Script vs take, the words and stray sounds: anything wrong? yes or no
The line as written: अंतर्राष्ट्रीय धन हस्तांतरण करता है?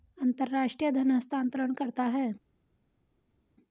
no